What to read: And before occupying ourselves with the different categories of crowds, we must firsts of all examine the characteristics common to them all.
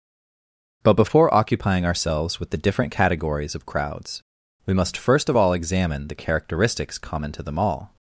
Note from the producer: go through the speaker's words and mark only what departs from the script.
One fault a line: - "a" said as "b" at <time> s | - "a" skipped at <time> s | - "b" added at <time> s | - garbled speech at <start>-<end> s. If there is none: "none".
- "And" said as "But" at 0.8 s
- "firsts" said as "first" at 5.0 s